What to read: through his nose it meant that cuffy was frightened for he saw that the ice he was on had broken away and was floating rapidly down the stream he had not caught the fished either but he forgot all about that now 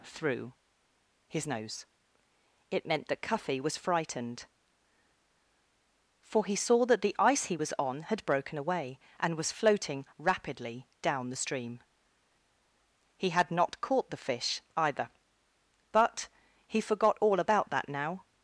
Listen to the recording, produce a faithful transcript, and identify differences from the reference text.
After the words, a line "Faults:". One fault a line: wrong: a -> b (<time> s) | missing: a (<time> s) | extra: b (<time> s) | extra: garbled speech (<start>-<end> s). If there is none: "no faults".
through his nose it meant that cuffy was frightened for he saw that the ice he was on had broken away and was floating rapidly down the stream he had not caught the fish either but he forgot all about that now
Faults:
wrong: fished -> fish (14.2 s)